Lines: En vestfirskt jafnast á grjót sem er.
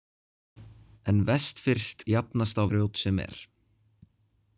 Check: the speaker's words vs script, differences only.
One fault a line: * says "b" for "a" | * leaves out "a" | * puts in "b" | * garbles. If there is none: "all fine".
all fine